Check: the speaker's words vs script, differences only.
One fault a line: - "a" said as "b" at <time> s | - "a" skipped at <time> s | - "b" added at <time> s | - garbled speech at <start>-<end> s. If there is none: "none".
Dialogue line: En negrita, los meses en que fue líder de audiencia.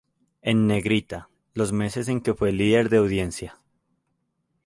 none